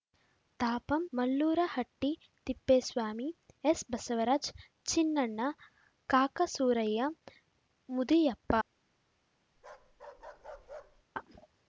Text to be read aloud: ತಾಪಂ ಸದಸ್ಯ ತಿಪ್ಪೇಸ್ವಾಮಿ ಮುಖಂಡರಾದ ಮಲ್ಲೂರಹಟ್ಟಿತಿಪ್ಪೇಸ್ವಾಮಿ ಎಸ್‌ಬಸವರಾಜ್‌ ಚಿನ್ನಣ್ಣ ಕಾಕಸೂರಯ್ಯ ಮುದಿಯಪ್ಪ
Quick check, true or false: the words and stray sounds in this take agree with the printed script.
false